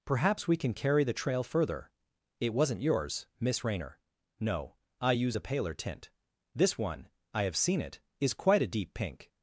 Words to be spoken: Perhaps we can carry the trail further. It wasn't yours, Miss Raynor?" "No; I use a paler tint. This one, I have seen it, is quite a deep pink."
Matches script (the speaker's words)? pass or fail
pass